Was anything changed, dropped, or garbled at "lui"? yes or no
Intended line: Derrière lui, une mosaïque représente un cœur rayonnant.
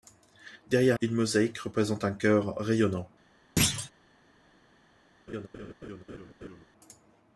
yes